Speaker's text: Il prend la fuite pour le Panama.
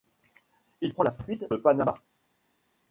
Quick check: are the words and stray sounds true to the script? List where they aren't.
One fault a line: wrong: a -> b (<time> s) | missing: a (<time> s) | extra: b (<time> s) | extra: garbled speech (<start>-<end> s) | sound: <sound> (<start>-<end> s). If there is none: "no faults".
missing: pour (1.5 s)